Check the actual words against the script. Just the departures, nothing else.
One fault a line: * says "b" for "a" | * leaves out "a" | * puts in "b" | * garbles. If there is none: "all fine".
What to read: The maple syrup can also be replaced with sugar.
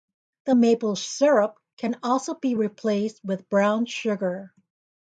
* puts in "brown"